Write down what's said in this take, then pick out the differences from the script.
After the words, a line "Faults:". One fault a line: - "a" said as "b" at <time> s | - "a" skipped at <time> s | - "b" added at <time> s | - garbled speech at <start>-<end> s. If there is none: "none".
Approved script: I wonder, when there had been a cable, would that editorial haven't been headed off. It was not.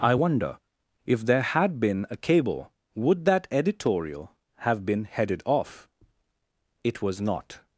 I wonder, if there had been a cable, would that editorial have been headed off. It was not.
Faults:
- "when" said as "if" at 1.0 s
- "haven't" said as "have" at 4.6 s